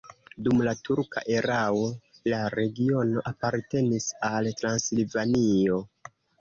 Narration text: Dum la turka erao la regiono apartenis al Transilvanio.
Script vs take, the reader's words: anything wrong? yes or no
no